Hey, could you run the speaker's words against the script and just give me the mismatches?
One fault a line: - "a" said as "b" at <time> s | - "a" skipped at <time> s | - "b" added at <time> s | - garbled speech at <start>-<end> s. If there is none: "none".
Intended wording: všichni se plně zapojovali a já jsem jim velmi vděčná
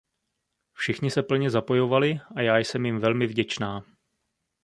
none